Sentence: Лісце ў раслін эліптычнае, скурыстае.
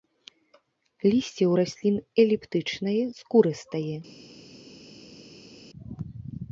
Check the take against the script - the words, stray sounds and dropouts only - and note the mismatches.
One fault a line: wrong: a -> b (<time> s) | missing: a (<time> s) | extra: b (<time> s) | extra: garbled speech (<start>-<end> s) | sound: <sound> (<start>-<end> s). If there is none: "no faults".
no faults